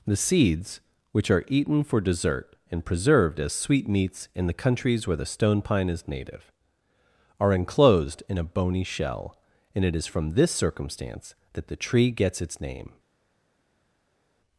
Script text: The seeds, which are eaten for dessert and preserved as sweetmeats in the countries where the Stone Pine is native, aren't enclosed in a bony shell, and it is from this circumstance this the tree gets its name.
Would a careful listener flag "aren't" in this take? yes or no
yes